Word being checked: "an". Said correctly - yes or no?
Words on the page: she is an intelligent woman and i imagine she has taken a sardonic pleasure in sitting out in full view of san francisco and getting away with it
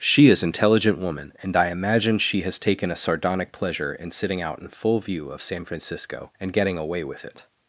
no